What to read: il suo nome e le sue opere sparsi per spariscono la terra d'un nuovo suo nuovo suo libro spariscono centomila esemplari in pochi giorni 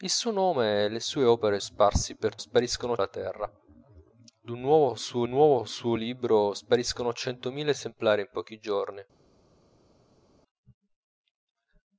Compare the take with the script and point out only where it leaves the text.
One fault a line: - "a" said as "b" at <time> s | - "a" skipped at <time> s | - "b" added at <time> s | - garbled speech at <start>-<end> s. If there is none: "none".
none